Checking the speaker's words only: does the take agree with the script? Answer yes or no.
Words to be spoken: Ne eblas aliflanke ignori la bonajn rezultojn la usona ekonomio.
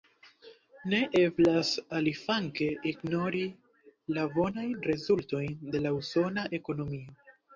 no